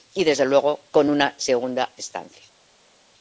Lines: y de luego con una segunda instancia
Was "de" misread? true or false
true